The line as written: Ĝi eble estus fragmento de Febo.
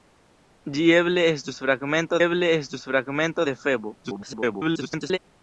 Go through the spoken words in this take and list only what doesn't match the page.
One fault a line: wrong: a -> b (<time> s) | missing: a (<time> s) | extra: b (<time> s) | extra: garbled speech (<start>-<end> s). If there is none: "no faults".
extra: eble estus fragmento (2.3 s)
extra: garbled speech (4.0-5.2 s)